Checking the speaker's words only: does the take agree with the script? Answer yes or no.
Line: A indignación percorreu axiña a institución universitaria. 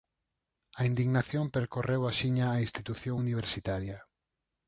yes